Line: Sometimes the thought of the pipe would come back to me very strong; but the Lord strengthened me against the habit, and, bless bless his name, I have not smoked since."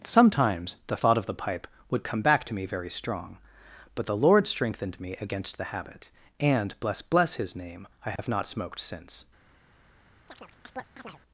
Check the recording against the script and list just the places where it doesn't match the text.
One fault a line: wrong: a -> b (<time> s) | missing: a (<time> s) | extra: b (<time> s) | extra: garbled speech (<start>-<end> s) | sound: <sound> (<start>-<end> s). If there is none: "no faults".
sound: dropout (8.2-8.2 s)
sound: chirp (10.3-11.2 s)